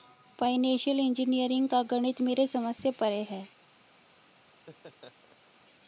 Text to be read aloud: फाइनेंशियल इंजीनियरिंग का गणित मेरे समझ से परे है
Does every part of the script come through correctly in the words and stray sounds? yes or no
no